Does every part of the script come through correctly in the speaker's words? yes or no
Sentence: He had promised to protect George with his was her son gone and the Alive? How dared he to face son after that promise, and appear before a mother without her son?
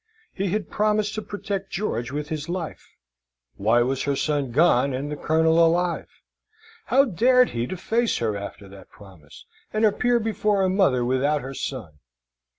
no